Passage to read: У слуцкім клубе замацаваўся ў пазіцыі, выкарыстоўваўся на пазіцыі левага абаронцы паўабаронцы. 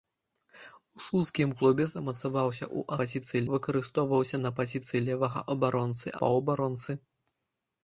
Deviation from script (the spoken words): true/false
false